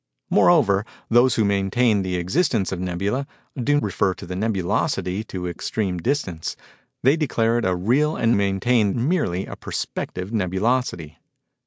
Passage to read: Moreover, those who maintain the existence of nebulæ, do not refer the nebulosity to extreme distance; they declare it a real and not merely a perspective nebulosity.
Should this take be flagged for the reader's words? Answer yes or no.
yes